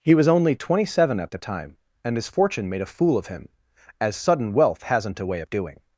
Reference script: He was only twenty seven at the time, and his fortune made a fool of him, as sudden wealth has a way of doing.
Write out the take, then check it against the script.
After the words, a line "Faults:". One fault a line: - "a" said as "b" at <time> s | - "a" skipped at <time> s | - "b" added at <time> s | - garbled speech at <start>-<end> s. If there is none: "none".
He was only twenty seven at the time, and his fortune made a fool of him, as sudden wealth hasn't a way of doing.
Faults:
- "has" said as "hasn't" at 4.8 s